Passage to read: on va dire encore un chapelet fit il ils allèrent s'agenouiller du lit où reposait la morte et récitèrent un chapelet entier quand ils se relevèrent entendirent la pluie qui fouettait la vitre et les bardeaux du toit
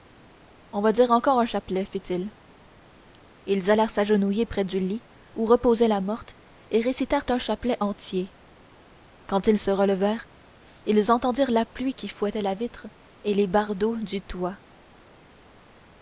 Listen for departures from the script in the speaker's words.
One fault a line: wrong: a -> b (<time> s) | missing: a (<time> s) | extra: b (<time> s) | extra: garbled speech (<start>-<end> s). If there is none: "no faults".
extra: près (4.5 s)
extra: ils (10.9 s)